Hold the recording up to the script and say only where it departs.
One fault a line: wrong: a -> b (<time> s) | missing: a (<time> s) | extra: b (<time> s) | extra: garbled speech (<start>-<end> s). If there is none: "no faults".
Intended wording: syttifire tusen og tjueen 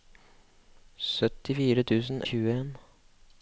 no faults